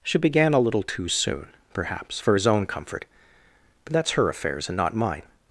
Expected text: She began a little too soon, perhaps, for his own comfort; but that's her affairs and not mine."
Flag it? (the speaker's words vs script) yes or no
no